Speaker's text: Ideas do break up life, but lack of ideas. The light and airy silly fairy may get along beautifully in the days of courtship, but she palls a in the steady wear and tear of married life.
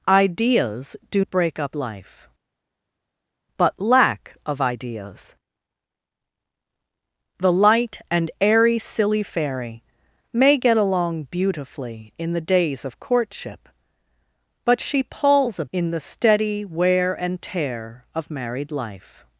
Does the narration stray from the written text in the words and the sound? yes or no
no